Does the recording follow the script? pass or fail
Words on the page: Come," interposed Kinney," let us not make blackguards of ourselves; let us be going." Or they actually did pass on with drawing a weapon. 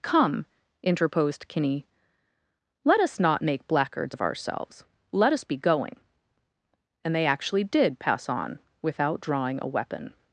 fail